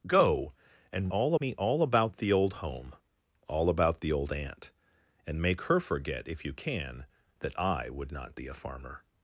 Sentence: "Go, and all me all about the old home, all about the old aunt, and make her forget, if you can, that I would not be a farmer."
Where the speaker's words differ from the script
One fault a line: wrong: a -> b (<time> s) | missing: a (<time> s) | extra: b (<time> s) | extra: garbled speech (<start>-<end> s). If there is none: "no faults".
no faults